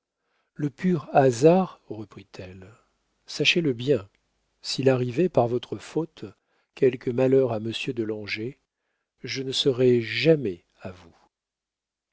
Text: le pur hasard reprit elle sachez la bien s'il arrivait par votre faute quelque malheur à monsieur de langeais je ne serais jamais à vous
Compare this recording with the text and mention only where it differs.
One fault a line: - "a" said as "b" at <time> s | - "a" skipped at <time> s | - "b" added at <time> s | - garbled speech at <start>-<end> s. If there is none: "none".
- "la" said as "le" at 3.6 s